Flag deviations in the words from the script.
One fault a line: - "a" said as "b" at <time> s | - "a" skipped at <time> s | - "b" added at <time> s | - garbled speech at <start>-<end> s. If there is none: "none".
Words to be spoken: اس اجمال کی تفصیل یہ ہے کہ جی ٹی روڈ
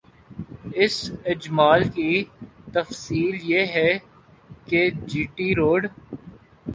none